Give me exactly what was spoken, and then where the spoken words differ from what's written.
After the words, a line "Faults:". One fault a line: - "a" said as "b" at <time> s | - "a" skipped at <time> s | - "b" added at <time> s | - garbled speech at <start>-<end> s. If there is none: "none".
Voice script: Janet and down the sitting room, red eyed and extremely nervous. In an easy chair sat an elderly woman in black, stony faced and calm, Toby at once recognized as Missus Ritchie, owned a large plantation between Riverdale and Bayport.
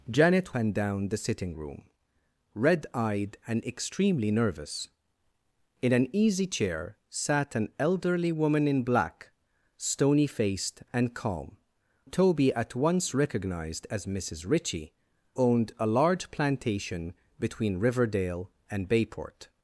Janet and down the sitting room, red eyed and extremely nervous. In an easy chair sat an elderly woman in black, stony faced and calm, Toby at once recognized as Missus Ritchie, owned a large plantation between Riverdale and Bayport.
Faults:
none